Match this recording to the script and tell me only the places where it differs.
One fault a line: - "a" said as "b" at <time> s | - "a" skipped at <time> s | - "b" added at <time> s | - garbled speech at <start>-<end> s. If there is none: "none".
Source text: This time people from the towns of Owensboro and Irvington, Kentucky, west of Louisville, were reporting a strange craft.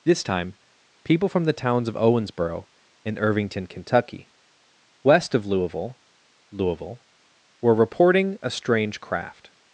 - "Louisville" added at 6.5 s